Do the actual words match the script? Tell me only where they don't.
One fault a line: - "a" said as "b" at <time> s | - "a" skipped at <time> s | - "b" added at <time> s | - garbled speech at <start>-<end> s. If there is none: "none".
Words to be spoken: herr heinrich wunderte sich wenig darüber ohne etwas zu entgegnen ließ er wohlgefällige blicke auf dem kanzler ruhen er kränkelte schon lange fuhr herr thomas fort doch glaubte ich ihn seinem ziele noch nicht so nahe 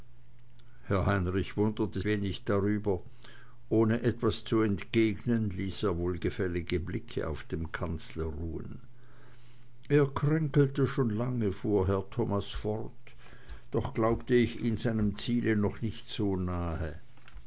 - "sich" skipped at 2.0 s